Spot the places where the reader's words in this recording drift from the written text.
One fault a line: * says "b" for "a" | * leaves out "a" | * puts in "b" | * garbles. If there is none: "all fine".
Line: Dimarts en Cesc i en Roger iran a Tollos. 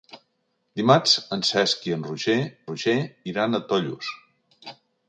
* puts in "Roger"